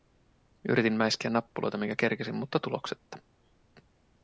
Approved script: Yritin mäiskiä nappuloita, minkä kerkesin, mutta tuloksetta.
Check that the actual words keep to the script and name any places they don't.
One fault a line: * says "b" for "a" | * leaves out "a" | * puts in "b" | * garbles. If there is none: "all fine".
all fine